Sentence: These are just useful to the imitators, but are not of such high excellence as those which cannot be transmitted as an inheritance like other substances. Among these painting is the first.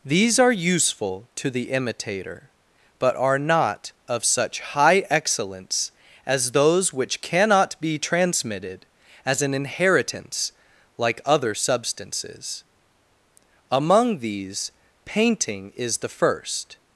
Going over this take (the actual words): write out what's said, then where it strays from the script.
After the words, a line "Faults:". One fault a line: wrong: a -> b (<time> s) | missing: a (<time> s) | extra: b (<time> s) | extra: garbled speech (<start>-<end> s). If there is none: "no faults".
These are useful to the imitator, but are not of such high excellence as those which cannot be transmitted as an inheritance like other substances. Among these painting is the first.
Faults:
missing: just (0.5 s)
wrong: imitators -> imitator (1.7 s)